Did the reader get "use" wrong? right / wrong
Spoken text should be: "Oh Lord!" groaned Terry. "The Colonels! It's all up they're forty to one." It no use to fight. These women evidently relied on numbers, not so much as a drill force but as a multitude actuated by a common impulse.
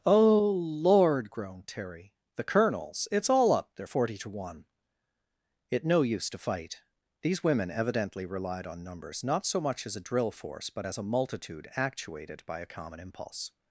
right